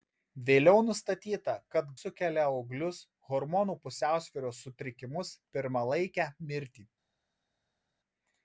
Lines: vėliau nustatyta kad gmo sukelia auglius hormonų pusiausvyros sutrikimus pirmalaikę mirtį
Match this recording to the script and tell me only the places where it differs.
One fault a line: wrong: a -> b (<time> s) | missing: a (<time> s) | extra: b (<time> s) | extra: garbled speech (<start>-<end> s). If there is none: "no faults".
missing: gmo (1.9 s)